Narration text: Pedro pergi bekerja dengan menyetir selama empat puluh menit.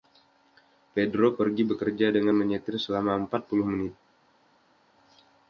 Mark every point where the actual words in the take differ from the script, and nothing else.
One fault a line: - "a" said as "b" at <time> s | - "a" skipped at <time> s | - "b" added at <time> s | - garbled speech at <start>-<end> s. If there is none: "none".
none